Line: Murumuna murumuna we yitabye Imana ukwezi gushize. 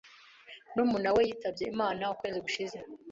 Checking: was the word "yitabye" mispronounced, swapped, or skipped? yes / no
no